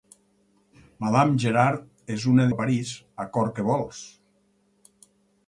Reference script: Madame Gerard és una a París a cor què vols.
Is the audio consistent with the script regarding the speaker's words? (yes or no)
yes